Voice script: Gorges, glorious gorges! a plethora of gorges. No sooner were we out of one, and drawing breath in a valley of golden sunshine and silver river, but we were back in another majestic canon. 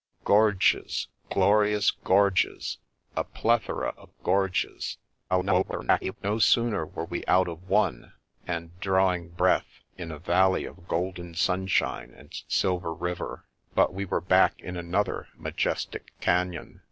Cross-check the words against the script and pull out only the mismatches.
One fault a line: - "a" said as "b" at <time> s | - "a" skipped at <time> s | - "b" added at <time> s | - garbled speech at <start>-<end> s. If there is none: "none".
- garbled speech at 5.3-6.2 s